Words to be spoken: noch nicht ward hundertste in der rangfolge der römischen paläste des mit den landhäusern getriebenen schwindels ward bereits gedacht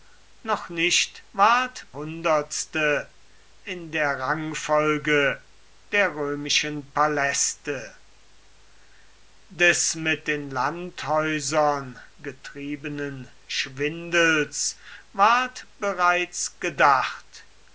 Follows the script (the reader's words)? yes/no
yes